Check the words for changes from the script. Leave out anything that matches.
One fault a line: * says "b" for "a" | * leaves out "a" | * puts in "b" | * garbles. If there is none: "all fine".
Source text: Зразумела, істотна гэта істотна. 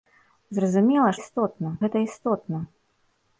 all fine